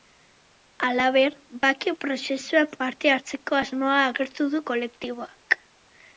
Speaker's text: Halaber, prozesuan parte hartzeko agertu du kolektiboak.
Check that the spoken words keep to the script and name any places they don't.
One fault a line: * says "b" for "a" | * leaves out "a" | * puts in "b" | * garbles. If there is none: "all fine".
* puts in "bake"
* puts in "asmoa"